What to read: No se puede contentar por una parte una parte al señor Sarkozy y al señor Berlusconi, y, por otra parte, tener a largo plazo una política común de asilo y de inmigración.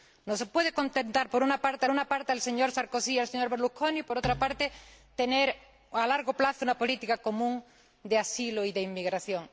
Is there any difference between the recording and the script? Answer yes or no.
no